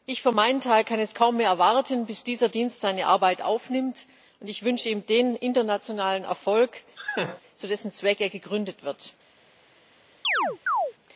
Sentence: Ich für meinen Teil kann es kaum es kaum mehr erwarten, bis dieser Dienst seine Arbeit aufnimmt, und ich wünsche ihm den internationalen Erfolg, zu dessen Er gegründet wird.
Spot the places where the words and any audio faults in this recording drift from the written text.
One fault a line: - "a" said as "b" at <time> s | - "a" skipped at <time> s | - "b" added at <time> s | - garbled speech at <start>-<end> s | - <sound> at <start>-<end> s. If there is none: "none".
- "es kaum" skipped at 1.4 s
- laugh at 7.0-7.4 s
- "Zweck" added at 7.9 s
- chirp at 10.2-10.9 s